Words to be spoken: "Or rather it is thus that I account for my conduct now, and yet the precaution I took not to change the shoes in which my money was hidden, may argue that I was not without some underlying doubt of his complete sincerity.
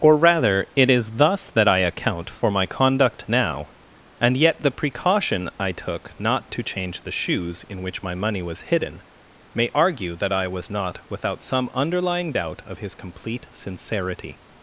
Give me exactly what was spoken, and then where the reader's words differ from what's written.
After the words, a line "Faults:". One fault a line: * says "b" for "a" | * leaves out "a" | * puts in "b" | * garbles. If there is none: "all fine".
"Or rather it is thus that I account for my conduct now, and yet the precaution I took not to change the shoes in which my money was hidden, may argue that I was not without some underlying doubt of his complete sincerity.
Faults:
all fine